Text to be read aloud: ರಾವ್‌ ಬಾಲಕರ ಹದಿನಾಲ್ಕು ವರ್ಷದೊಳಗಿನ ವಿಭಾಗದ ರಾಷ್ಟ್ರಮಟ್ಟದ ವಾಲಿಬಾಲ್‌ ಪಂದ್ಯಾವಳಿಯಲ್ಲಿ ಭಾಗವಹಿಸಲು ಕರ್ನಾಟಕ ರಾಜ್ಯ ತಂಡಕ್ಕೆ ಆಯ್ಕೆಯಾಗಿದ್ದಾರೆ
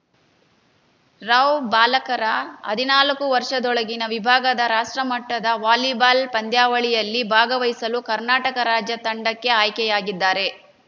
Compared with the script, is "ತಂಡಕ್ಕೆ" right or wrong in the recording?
right